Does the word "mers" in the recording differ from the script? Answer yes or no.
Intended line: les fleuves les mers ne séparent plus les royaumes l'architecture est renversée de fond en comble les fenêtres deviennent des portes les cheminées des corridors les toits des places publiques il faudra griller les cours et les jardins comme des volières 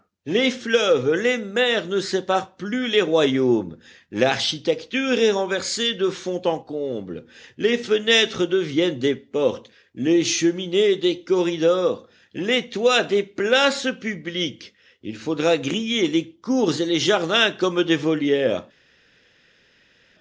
no